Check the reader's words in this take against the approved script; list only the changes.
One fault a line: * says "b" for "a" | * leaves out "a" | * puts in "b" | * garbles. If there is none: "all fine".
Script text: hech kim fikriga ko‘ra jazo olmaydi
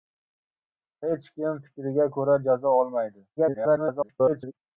* garbles